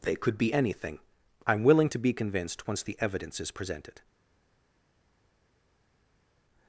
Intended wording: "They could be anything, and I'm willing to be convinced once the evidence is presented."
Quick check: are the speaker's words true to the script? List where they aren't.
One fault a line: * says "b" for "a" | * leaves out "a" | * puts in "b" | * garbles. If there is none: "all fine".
* leaves out "and"